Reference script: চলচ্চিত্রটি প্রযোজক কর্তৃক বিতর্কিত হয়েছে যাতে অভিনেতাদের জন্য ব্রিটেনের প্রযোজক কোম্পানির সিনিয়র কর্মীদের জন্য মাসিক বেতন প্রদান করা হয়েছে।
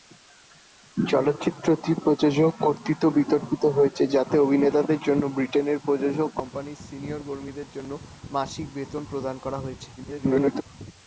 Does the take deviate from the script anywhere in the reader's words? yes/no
yes